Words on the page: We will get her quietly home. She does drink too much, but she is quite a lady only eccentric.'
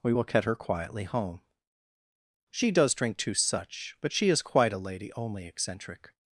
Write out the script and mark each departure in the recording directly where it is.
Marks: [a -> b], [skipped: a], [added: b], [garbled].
We will get her quietly home. She does drink too [much, -> such] but she is quite a lady only eccentric.'